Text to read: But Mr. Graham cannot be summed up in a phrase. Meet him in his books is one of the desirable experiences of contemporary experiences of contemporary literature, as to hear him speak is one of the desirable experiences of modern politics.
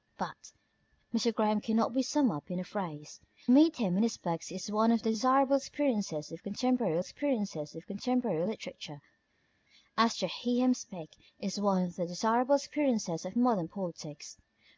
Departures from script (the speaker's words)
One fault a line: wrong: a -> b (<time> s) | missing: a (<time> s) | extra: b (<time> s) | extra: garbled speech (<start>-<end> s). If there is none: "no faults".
no faults